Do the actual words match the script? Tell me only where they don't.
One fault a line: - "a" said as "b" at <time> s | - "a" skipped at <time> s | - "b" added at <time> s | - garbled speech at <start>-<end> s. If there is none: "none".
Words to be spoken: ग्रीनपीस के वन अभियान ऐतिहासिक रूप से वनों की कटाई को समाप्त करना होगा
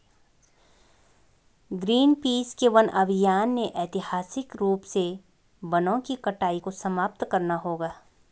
- "ने" added at 3.5 s